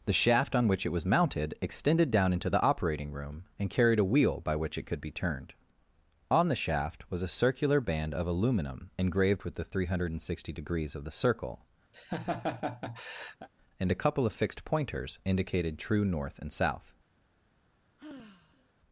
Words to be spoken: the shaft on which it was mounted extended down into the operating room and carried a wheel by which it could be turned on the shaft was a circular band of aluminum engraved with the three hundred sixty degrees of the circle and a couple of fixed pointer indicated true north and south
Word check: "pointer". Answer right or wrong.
wrong